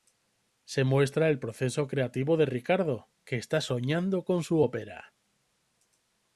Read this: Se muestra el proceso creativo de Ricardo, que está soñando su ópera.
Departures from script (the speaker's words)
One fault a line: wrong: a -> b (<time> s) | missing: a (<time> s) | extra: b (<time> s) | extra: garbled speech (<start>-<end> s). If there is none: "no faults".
extra: con (4.2 s)